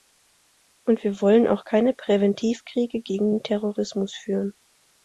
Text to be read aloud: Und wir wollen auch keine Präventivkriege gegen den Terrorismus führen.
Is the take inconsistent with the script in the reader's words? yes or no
no